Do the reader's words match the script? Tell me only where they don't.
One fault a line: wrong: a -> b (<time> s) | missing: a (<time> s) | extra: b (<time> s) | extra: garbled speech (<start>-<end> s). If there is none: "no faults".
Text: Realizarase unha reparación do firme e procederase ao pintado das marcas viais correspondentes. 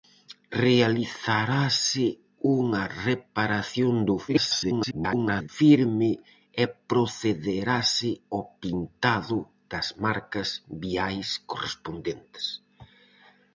extra: garbled speech (4.3-5.5 s)